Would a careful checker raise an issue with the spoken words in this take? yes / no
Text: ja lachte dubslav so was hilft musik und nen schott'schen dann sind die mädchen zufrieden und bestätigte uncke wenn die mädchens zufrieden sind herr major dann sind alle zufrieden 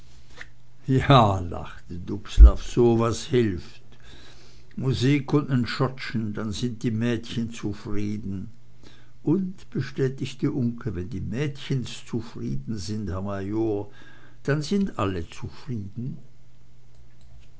no